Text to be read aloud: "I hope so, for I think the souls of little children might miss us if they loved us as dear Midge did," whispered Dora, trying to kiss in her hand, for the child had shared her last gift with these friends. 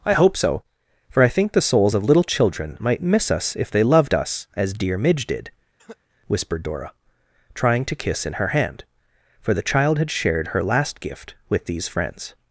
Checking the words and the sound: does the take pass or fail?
fail